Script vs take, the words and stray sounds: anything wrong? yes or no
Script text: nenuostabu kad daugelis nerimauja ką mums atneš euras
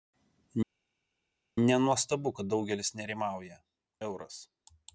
yes